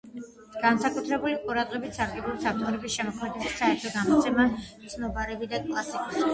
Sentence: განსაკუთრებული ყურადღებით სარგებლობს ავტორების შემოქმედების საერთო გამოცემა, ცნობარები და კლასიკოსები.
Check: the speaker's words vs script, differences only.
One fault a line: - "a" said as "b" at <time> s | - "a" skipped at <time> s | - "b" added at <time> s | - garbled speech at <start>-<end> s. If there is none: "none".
none